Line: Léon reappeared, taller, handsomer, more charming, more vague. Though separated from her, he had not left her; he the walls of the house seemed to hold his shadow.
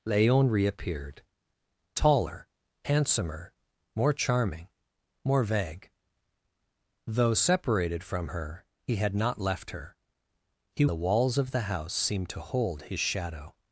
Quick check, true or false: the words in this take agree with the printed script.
true